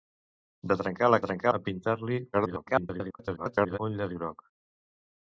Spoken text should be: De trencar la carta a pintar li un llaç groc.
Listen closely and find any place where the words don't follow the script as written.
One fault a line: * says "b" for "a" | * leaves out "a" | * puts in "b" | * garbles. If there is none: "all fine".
* says "trencar" for "carta"
* garbles